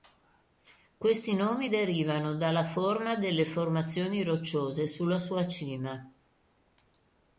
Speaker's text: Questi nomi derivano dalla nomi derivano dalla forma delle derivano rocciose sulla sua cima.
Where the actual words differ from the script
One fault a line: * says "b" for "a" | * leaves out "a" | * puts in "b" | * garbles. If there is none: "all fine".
* leaves out "nomi derivano dalla"
* says "formazioni" for "derivano"